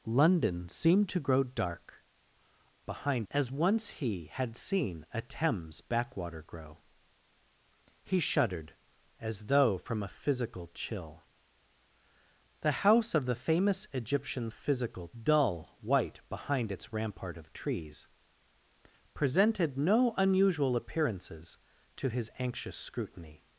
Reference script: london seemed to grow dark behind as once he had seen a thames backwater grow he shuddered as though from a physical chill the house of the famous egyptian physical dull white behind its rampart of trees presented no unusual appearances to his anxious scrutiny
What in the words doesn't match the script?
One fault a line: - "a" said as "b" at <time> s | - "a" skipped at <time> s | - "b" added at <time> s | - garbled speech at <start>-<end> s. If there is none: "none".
none